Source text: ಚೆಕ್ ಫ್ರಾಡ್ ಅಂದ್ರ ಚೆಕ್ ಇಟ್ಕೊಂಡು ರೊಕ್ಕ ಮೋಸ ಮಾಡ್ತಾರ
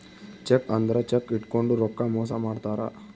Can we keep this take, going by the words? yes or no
no